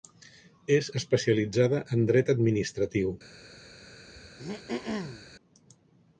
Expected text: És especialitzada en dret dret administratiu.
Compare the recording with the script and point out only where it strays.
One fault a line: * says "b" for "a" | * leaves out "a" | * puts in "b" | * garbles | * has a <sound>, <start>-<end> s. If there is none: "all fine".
* leaves out "dret"
* has a throat clearing, 4.1-5.3 s